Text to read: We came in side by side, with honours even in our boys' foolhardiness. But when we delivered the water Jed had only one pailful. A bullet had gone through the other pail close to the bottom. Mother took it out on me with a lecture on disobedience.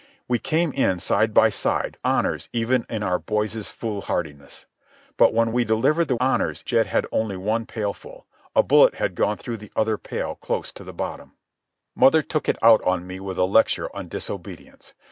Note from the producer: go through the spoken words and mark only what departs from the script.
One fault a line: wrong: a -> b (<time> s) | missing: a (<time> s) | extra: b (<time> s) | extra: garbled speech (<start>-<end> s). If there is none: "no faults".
missing: with (2.0 s)
wrong: water -> honours (6.2 s)